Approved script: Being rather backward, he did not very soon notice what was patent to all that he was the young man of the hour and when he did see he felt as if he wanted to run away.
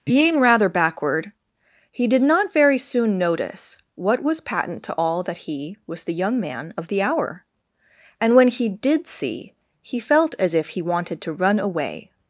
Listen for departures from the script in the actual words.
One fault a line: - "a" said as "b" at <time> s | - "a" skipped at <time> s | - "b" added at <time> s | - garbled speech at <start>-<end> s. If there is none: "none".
none